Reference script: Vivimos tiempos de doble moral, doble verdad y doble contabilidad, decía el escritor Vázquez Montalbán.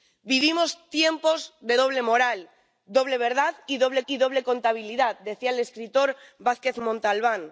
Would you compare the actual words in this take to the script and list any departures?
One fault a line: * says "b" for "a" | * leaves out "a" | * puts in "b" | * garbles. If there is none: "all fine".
* puts in "y doble"